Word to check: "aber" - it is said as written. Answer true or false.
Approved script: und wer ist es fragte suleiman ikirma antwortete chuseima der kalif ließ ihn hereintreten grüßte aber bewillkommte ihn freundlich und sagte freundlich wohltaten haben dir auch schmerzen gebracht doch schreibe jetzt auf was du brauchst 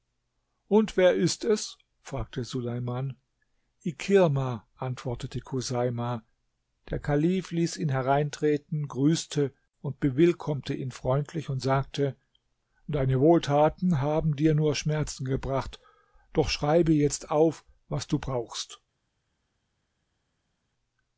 false